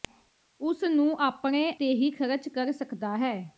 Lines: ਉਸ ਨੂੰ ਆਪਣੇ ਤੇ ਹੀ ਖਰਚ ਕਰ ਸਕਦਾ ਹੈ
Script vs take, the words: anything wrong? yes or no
no